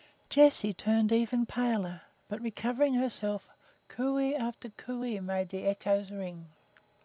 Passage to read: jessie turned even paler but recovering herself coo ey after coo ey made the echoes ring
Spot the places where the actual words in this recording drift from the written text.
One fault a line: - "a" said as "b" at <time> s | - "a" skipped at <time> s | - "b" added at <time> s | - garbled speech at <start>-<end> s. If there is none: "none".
none